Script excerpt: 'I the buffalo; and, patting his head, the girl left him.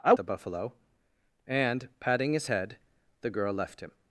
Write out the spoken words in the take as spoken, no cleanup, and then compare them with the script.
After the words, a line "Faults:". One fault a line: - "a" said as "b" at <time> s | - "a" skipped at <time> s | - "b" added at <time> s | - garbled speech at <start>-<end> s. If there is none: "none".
'I the buffalo; and, patting his head, the girl left him.
Faults:
none